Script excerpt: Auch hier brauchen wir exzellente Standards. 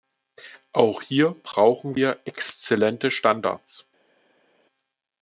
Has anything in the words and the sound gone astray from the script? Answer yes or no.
no